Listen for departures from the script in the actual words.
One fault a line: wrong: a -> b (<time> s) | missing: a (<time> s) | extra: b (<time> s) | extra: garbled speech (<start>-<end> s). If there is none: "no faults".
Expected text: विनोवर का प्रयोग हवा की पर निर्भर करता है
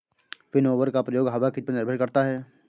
no faults